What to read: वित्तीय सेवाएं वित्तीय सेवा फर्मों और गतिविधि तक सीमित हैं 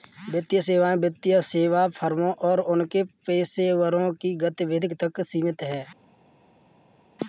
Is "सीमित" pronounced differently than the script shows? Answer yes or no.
no